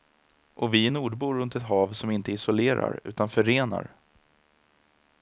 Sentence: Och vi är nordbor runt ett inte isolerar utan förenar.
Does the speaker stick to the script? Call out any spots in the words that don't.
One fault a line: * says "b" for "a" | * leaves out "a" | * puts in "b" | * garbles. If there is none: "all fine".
* puts in "hav som"